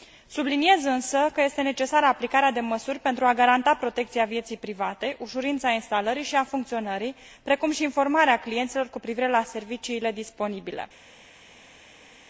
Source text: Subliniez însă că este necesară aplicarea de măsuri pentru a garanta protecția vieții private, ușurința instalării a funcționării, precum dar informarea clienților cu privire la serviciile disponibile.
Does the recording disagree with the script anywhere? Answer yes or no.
yes